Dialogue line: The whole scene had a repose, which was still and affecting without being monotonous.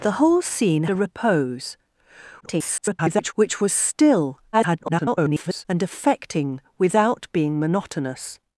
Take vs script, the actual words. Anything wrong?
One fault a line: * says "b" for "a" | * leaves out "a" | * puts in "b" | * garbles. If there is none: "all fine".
* leaves out "had"
* garbles
* garbles